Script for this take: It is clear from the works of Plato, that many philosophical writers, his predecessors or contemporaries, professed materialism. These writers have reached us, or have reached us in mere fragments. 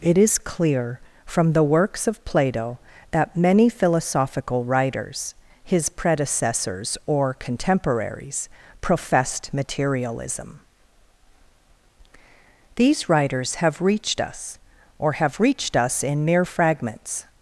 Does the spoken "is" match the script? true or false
true